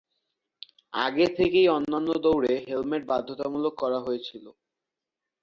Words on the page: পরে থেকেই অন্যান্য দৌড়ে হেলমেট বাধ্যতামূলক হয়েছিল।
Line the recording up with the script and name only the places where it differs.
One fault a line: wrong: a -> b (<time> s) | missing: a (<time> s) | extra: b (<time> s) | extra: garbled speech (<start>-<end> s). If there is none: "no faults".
wrong: পরে -> আগে (0.9 s)
extra: করা (3.8 s)